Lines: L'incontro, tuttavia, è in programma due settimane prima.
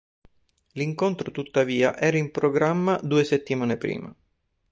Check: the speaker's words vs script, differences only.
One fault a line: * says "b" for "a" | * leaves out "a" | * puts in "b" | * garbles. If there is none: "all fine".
* says "era" for "è"